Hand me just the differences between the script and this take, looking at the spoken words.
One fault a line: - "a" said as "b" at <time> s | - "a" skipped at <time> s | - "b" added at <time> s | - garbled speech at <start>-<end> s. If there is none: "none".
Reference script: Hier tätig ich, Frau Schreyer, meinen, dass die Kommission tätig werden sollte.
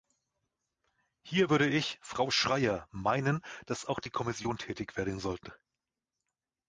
- "tätig" said as "würde" at 1.5 s
- "auch" added at 3.8 s